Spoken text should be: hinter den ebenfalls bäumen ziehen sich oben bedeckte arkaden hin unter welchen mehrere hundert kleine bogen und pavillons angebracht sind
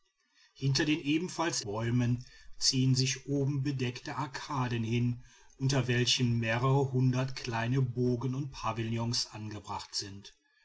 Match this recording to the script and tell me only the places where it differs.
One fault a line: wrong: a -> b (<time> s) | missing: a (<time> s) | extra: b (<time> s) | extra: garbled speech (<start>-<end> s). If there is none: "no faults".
no faults